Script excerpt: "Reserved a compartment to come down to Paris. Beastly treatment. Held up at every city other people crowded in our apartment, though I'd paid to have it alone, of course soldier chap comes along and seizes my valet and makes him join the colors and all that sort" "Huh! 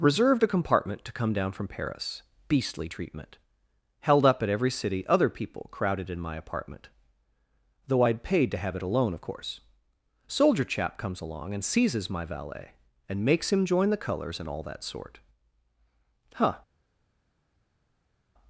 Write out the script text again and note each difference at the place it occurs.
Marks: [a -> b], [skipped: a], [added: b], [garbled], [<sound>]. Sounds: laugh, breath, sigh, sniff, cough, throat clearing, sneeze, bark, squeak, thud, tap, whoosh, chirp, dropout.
"Reserved a compartment to come down [to -> from] Paris. Beastly treatment. Held up at every city other people crowded in [our -> my] apartment, though I'd paid to have it alone, of course soldier chap comes along and seizes my valet and makes him join the colors and all that sort" "Huh!